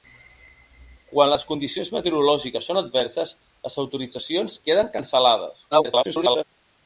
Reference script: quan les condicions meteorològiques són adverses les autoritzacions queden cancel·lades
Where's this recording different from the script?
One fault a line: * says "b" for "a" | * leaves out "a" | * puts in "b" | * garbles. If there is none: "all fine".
* garbles